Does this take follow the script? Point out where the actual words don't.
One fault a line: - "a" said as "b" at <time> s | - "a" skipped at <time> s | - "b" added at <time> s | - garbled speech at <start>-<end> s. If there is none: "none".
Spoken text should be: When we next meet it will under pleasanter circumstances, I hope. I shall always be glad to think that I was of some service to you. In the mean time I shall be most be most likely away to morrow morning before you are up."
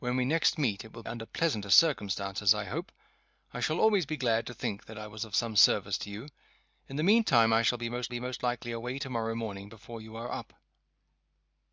none